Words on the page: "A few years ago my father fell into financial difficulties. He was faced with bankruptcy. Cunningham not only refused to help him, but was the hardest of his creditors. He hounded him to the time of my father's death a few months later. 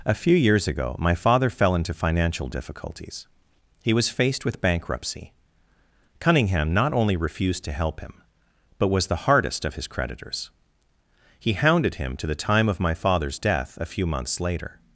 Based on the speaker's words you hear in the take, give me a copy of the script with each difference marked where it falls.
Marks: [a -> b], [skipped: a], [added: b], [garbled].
"A few years ago my father fell into financial difficulties. He was faced with bankruptcy. Cunningham not only refused to help him, but was the hardest of his creditors. He hounded him to the time of my father's death a few months later.